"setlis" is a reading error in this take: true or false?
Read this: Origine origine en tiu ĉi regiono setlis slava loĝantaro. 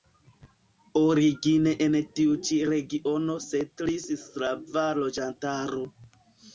false